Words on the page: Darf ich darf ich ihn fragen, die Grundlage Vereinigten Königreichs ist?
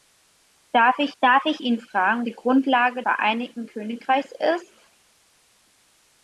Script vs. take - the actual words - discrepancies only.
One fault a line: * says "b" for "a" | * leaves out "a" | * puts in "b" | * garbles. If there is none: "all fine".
all fine